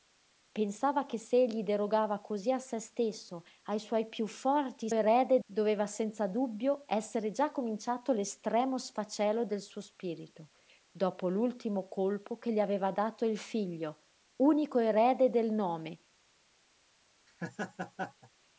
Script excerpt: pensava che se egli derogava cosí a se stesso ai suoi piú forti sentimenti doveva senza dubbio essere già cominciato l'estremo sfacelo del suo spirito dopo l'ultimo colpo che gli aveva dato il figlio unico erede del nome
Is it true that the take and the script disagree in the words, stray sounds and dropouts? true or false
true